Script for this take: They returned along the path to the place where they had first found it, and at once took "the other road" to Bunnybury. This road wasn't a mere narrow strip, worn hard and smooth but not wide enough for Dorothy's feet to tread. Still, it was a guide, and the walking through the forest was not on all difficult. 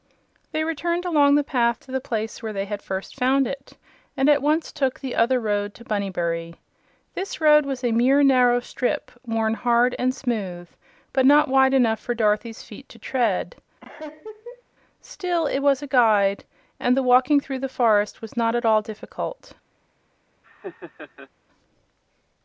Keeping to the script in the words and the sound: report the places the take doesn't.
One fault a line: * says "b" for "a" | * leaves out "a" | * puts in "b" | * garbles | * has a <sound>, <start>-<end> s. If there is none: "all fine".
* says "was" for "wasn't"
* has a laugh, 13.8-14.6 s
* says "at" for "on"
* has a laugh, 20.4-21.3 s